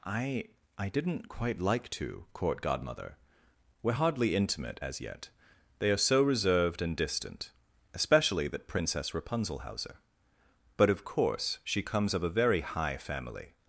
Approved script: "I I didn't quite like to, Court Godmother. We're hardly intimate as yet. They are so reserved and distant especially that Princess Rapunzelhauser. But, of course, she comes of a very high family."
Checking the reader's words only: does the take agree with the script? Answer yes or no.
yes